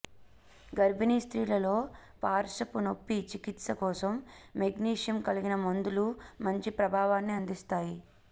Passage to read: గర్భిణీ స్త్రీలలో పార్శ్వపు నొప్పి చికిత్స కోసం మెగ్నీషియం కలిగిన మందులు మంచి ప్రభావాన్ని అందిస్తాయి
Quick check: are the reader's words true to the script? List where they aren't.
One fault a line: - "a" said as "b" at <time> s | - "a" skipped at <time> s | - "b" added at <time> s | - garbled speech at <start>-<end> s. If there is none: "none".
none